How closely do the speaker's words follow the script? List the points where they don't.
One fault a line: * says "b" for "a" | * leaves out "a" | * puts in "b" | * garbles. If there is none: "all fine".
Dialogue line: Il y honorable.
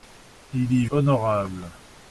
all fine